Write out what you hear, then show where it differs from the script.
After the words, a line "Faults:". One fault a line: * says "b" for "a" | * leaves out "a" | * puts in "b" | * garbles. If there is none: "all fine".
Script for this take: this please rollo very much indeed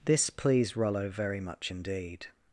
this pleased rollo very much indeed
Faults:
* says "pleased" for "please"